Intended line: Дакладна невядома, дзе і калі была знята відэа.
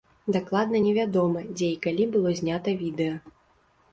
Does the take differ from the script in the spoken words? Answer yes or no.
yes